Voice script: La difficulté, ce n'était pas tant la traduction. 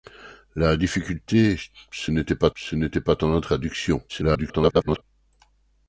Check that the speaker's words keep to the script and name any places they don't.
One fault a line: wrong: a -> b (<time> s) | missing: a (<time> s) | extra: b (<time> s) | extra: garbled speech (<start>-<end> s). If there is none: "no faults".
extra: ce n'était pas (2.5 s)
extra: garbled speech (4.1-5.0 s)